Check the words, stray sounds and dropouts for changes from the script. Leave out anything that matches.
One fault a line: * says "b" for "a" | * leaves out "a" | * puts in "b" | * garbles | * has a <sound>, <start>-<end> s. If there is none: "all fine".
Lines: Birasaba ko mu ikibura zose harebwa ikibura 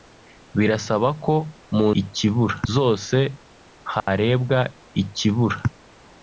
* has a dropout, 4.0-4.1 s